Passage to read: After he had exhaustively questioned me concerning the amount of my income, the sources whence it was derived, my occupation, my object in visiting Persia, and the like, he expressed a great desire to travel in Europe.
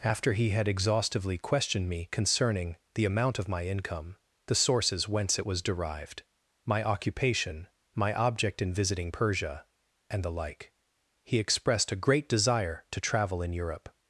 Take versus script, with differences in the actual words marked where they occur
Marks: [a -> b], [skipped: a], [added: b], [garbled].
After he had exhaustively questioned me concerning the amount of my income, the sources whence it was derived, my occupation, my object in visiting Persia, and the like, he expressed a great desire to travel in Europe.